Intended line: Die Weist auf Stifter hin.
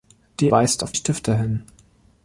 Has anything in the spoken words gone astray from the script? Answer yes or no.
no